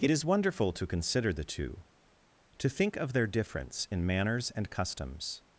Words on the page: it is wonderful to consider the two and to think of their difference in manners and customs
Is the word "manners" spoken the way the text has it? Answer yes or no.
yes